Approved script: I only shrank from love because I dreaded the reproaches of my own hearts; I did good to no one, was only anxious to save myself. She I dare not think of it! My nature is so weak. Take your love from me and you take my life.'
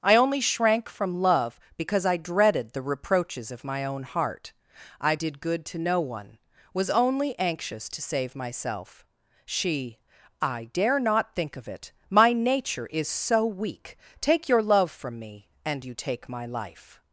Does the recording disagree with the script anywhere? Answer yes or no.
yes